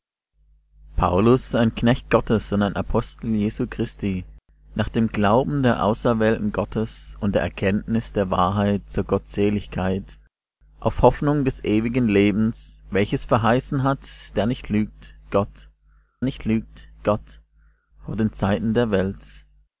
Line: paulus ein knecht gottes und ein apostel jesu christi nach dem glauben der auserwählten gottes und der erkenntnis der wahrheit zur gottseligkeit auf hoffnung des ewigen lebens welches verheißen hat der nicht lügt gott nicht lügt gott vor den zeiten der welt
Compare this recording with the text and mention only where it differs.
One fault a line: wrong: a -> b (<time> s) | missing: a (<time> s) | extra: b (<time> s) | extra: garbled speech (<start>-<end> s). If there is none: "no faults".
no faults